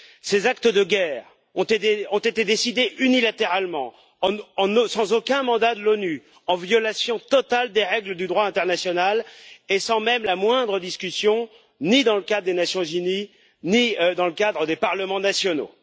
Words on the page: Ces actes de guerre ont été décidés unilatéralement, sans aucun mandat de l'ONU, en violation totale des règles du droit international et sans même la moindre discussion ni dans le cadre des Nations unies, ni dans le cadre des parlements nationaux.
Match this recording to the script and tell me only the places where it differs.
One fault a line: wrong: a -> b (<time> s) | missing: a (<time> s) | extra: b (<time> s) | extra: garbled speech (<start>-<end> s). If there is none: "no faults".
no faults